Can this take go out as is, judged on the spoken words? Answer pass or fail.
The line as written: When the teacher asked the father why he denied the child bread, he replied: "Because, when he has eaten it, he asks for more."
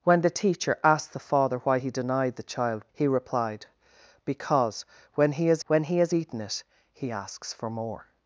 fail